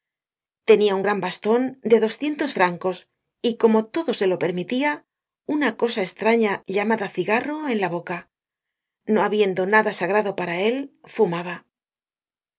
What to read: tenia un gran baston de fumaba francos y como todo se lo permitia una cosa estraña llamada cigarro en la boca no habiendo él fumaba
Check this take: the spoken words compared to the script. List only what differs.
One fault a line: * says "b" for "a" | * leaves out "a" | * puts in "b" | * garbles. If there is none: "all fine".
* says "doscientos" for "fumaba"
* puts in "nada sagrado para"